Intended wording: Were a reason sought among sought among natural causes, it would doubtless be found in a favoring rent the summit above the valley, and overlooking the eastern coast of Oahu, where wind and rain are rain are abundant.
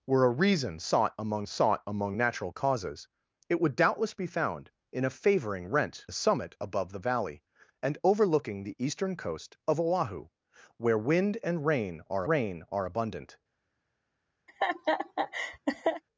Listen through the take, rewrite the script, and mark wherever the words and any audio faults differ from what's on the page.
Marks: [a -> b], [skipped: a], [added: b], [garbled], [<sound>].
Were a reason sought among sought among natural causes, it would doubtless be found in a favoring rent the summit above the valley, and overlooking the eastern coast of Oahu, where wind and rain are rain are abundant. [laugh]